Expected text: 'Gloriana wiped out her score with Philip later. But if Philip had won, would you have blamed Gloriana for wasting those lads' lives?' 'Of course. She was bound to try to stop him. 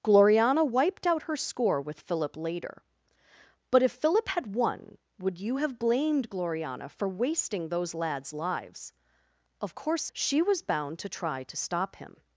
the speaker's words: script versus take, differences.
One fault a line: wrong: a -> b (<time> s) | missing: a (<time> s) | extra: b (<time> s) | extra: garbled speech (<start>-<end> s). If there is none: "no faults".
no faults